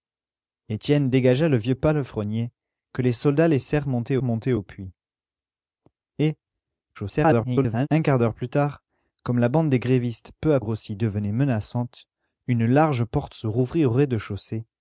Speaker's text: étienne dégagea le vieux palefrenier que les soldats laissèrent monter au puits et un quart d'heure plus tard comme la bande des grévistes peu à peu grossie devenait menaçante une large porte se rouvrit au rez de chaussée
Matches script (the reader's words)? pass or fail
fail